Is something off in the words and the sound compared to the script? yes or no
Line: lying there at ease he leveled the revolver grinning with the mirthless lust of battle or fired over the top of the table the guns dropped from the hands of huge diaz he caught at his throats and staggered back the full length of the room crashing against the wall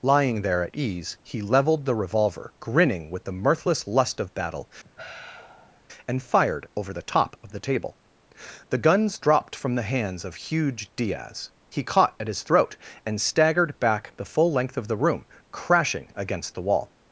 yes